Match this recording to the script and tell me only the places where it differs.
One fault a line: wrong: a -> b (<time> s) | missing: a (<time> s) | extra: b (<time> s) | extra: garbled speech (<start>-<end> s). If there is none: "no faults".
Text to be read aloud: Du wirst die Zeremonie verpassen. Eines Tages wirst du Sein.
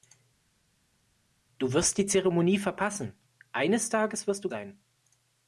no faults